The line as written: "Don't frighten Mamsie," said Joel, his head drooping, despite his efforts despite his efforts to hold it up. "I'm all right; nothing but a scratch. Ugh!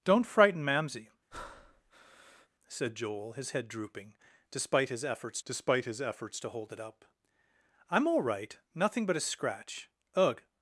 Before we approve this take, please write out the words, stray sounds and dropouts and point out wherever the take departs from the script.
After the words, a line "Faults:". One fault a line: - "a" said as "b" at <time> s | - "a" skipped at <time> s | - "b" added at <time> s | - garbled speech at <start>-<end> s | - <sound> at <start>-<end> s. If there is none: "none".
"Don't frighten Mamsie," said Joel, his head drooping, despite his efforts despite his efforts to hold it up. "I'm all right; nothing but a scratch. Ugh!
Faults:
- breath at 1.3-2.5 s